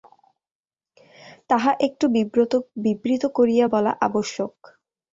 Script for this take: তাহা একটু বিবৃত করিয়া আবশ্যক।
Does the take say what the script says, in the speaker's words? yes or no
no